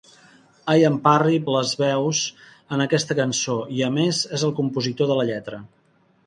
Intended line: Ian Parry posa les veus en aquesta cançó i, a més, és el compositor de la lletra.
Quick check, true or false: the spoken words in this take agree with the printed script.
false